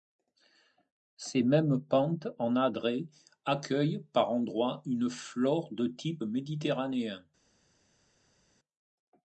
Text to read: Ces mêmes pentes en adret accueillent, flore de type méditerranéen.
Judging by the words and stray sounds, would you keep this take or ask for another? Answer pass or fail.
fail